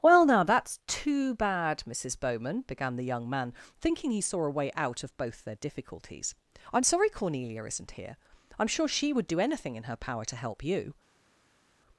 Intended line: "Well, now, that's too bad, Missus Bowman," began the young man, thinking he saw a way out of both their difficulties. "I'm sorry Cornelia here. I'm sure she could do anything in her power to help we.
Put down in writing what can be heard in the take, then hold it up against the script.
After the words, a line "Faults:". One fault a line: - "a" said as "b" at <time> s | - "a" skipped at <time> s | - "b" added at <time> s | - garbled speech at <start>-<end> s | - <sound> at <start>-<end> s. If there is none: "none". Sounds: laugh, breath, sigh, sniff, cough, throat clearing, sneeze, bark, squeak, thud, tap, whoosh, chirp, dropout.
"Well, now, that's too bad, Missus Bowman," began the young man, thinking he saw a way out of both their difficulties. "I'm sorry Cornelia isn't here. I'm sure she would do anything in her power to help you.
Faults:
- "isn't" added at 7.6 s
- "could" said as "would" at 9.1 s
- "we" said as "you" at 10.6 s